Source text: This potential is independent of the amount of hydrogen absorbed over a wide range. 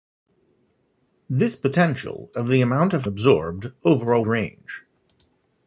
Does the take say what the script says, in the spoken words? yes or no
no